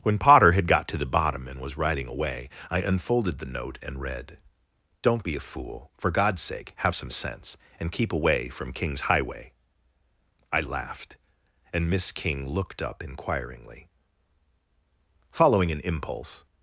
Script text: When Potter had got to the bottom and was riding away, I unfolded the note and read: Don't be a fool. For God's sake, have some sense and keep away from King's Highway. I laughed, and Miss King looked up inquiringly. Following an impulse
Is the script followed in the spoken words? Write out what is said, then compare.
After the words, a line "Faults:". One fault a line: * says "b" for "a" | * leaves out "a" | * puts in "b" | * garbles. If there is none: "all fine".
When Potter had got to the bottom and was riding away, I unfolded the note and read: Don't be a fool. For God's sake, have some sense and keep away from King's Highway. I laughed, and Miss King looked up inquiringly. Following an impulse
Faults:
all fine